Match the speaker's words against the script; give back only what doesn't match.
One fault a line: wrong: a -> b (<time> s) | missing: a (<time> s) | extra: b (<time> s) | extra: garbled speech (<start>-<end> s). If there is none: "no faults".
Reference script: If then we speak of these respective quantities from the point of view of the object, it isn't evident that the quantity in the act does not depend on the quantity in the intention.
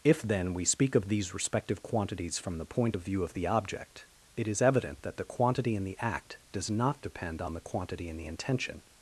wrong: isn't -> is (4.5 s)